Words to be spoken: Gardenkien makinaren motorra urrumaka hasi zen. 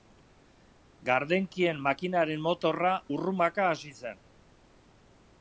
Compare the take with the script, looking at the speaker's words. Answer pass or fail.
pass